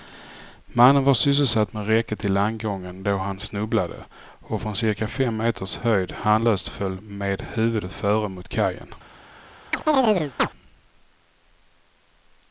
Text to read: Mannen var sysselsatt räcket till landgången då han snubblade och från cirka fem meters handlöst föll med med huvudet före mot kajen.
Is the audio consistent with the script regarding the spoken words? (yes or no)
no